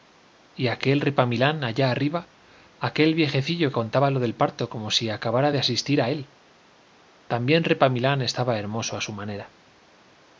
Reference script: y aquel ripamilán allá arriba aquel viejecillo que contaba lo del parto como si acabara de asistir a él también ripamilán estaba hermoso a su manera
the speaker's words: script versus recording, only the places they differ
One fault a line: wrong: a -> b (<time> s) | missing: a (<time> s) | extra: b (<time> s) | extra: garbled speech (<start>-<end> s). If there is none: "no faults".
missing: que (3.7 s)